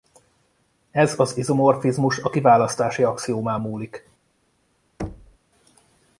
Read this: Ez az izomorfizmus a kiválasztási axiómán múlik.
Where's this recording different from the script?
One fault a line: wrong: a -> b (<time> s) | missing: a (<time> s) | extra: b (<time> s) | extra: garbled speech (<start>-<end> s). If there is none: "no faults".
no faults